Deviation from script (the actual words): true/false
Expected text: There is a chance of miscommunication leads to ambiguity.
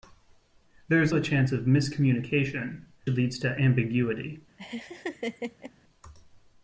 false